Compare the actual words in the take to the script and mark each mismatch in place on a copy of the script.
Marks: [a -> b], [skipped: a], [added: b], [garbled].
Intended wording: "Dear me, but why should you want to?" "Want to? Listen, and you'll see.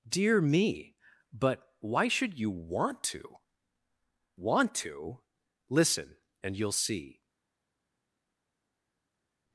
"Dear me, but why should you want to?" "Want to? Listen, and you'll see.